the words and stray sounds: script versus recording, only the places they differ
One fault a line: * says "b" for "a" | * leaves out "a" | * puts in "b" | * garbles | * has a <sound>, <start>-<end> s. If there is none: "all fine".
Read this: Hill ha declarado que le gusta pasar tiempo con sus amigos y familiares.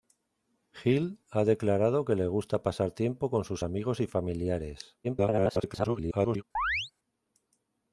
* garbles
* has a chirp, 6.5-6.9 s